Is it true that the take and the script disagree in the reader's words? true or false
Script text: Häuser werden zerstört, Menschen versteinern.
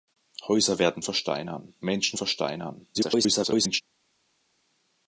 true